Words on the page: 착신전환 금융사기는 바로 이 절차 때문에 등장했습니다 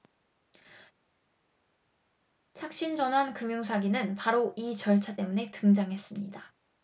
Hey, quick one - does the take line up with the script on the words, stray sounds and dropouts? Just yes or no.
yes